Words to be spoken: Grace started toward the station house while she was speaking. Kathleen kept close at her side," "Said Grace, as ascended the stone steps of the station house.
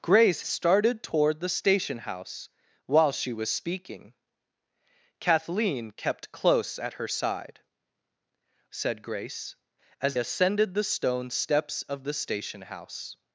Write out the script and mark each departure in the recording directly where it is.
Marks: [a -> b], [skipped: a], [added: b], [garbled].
Grace started toward the station house while she was speaking. Kathleen kept close at her side," "Said Grace, as ascended the stone steps of the station house.